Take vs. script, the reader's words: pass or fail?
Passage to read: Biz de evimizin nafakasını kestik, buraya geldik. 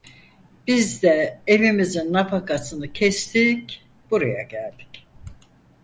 pass